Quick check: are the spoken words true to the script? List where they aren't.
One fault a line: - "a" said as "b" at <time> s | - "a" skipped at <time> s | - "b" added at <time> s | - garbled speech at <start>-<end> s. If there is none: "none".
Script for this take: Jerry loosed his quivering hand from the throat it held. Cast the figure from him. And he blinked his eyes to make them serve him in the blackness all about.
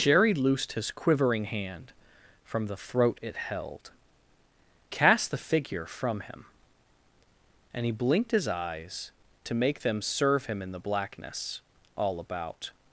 none